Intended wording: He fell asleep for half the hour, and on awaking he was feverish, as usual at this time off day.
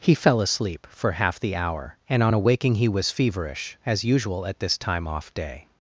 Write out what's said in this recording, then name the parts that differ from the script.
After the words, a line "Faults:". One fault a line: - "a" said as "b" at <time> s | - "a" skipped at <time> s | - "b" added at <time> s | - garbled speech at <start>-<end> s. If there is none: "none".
He fell asleep for half the hour, and on awaking he was feverish, as usual at this time off day.
Faults:
none